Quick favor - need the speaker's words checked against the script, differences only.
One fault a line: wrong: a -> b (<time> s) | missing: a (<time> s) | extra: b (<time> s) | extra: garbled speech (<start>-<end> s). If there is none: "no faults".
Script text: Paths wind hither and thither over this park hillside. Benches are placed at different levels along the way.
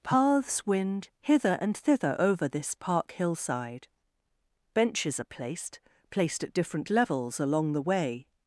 extra: placed (6.1 s)